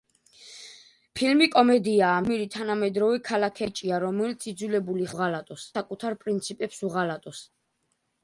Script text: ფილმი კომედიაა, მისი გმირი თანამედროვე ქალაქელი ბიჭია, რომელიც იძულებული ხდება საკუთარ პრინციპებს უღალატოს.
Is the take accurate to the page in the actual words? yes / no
no